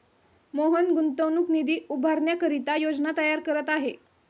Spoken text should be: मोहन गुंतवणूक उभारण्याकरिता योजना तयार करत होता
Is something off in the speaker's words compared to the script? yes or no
yes